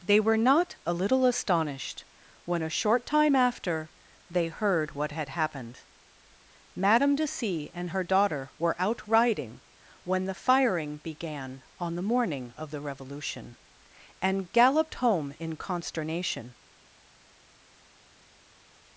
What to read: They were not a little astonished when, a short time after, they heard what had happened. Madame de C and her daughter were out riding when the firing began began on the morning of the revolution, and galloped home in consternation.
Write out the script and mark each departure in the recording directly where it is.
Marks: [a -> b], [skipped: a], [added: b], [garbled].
They were not a little astonished when, a short time after, they heard what had happened. Madame de C and her daughter were out riding when the firing began [skipped: began] on the morning of the revolution, and galloped home in consternation.